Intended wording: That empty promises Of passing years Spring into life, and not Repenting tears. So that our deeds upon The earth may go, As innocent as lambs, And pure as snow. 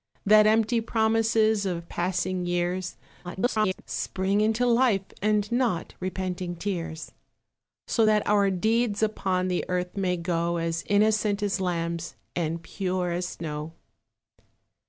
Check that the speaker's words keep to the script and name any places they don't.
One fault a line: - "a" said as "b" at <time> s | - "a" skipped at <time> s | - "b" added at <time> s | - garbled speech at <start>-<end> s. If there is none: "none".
- garbled speech at 3.2-3.8 s